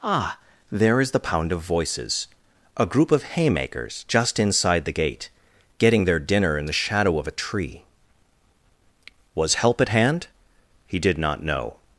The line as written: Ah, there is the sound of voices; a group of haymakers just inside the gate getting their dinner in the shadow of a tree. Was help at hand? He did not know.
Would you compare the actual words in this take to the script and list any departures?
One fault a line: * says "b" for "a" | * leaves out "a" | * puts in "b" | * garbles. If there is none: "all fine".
* says "pound" for "sound"